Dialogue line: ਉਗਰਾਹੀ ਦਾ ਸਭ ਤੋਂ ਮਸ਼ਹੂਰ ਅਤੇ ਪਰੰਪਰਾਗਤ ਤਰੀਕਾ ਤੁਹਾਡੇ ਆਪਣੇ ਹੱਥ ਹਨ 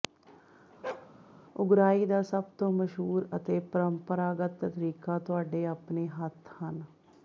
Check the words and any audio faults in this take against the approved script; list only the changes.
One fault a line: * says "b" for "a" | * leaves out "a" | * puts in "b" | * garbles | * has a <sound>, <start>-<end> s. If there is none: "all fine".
* has a bark, 0.8-1.1 s